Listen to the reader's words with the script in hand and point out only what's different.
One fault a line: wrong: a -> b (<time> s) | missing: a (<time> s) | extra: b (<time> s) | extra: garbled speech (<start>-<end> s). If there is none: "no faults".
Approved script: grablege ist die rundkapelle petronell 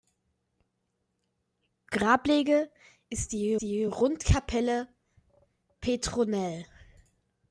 extra: die (3.6 s)